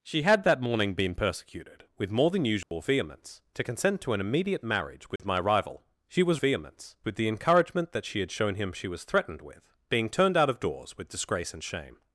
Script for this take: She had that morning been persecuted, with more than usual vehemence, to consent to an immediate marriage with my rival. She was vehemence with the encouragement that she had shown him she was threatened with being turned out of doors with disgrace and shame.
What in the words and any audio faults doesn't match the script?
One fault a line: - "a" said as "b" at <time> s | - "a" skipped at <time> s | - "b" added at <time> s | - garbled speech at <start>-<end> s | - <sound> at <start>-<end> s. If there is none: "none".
- dropout at 2.6-2.7 s
- dropout at 5.2-5.2 s